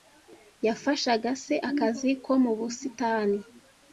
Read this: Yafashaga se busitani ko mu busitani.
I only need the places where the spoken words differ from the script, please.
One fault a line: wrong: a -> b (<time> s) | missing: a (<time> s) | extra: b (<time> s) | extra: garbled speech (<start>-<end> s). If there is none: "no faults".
wrong: busitani -> akazi (1.7 s)